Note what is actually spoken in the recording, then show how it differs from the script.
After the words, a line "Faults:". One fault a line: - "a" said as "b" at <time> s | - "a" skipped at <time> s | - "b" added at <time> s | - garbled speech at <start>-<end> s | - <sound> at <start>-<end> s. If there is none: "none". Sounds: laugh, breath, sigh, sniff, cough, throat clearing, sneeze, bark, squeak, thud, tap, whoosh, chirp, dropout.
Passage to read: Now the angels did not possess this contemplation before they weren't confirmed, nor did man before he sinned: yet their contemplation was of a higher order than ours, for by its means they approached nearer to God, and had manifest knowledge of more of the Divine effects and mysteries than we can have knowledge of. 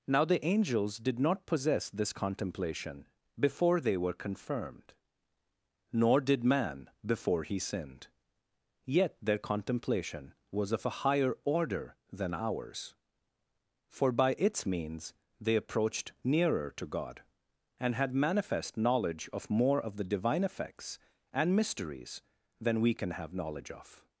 Now the angels did not possess this contemplation before they were confirmed, nor did man before he sinned: yet their contemplation was of a higher order than ours, for by its means they approached nearer to God, and had manifest knowledge of more of the Divine effects and mysteries than we can have knowledge of.
Faults:
- "weren't" said as "were" at 4.0 s